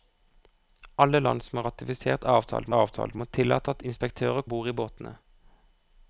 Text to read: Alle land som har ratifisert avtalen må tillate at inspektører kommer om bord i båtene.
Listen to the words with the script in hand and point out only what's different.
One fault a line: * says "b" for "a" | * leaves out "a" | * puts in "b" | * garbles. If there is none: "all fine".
* puts in "avtalen"
* leaves out "kommer"